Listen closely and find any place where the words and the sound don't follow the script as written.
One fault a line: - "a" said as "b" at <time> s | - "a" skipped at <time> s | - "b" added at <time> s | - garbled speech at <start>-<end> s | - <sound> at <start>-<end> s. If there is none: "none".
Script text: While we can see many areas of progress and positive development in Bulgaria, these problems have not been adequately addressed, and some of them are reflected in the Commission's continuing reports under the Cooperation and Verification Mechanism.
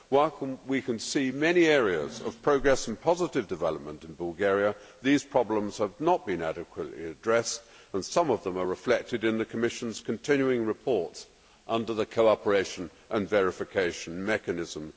none